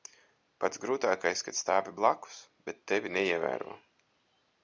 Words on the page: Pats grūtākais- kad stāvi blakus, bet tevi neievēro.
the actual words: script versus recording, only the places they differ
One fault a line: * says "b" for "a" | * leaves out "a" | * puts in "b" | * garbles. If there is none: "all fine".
all fine